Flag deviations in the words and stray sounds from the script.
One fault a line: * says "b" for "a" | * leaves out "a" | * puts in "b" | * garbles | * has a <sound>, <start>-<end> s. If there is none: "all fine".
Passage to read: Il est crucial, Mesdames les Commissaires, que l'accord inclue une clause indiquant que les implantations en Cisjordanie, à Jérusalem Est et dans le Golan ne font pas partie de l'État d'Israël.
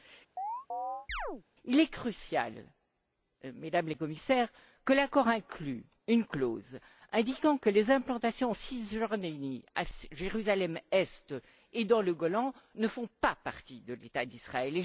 * has a chirp, 0.4-1.4 s